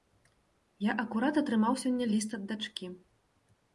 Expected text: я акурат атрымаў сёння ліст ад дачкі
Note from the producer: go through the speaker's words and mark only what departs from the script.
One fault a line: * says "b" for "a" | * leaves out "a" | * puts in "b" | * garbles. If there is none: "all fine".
all fine